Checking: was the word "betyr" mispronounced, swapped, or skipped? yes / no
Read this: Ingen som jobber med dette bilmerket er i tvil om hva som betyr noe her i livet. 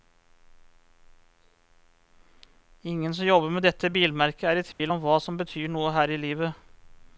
no